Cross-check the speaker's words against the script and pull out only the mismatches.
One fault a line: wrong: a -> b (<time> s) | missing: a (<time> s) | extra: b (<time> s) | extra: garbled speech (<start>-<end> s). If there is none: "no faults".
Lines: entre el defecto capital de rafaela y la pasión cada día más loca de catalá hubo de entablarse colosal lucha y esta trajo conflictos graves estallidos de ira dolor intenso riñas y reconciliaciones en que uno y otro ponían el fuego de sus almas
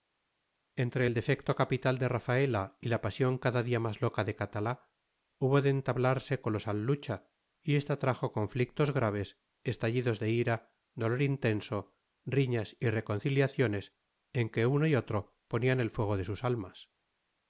no faults